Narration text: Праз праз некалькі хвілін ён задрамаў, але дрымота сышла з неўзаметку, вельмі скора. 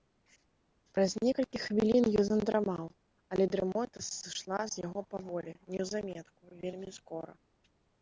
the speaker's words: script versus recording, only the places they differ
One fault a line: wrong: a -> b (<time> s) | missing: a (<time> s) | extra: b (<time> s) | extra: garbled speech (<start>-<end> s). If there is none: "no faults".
missing: праз (1.1 s)
extra: яго паволі (4.9 s)